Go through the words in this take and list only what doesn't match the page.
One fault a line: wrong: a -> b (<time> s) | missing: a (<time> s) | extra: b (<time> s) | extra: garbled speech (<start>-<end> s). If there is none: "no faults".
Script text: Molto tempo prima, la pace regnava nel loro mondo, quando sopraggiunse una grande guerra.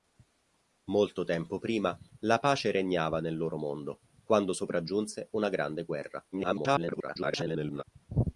extra: garbled speech (6.3-7.8 s)